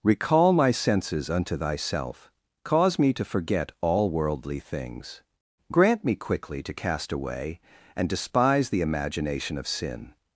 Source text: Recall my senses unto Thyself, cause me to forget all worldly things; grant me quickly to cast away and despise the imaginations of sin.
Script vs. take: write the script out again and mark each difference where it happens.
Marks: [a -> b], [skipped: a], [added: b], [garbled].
Recall my senses unto Thyself, cause me to forget all worldly things; grant me quickly to cast away and despise the [imaginations -> imagination] of sin.